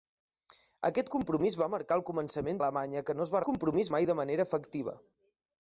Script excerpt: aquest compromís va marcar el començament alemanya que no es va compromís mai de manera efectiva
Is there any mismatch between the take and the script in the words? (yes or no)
no